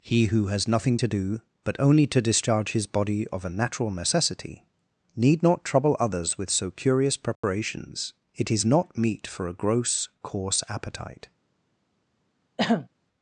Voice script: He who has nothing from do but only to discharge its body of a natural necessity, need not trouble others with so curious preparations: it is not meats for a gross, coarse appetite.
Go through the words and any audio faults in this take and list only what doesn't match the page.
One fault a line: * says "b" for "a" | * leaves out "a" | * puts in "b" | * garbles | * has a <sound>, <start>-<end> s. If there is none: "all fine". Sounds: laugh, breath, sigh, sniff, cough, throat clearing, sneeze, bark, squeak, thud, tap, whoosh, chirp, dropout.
* says "to" for "from"
* says "his" for "its"
* has a dropout, 7.3-7.4 s
* says "meat" for "meats"
* has a throat clearing, 12.6-12.9 s